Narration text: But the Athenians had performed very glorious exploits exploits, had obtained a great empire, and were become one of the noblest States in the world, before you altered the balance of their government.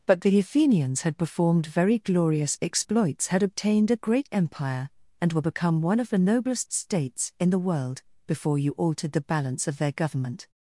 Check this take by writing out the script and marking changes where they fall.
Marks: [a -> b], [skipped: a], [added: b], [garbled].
But the Athenians had performed very glorious exploits [skipped: exploits,] had obtained a great empire, and were become one of the noblest States in the world, before you altered the balance of their government.